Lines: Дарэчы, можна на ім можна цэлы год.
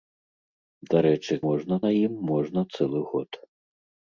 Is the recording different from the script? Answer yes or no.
no